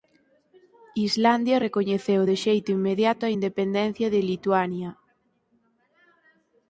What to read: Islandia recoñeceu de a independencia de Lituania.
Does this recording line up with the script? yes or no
no